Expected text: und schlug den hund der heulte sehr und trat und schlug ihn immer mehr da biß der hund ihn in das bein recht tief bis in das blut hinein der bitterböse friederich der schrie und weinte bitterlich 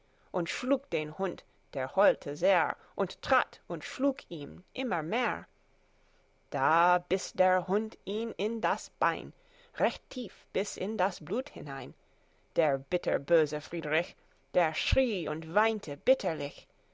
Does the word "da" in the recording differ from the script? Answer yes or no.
no